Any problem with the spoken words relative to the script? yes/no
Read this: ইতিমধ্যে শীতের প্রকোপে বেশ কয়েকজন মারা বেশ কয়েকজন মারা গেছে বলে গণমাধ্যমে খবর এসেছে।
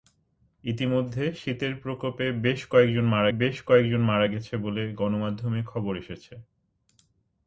no